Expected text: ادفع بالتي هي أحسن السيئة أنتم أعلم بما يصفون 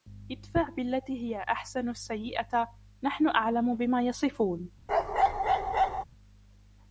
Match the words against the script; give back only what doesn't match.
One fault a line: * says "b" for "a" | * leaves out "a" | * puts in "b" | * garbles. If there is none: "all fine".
* says "نحن" for "أنتم"